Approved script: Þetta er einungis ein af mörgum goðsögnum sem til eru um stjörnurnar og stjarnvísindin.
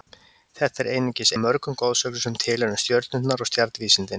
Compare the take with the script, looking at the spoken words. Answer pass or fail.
fail